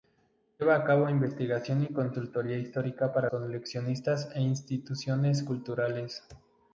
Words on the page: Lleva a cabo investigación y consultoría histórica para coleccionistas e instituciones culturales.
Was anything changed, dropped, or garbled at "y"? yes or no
no